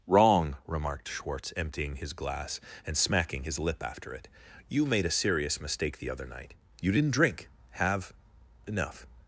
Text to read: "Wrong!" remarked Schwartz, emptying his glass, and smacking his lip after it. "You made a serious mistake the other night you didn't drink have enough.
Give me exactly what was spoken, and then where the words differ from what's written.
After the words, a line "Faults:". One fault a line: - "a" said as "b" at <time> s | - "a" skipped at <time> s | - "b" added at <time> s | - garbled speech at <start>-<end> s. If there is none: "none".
"Wrong!" remarked Schwartz, emptying his glass, and smacking his lip after it. "You made a serious mistake the other night you didn't drink have enough.
Faults:
none